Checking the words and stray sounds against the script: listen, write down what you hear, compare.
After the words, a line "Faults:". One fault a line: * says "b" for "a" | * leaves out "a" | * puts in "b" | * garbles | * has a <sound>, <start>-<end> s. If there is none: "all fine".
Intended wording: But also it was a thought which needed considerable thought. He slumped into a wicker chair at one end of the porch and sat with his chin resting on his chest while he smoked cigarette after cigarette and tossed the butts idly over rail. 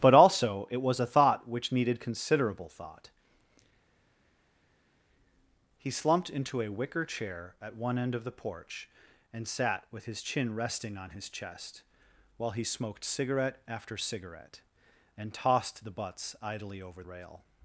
But also it was a thought which needed considerable thought. He slumped into a wicker chair at one end of the porch and sat with his chin resting on his chest while he smoked cigarette after cigarette and tossed the butts idly over rail.
Faults:
all fine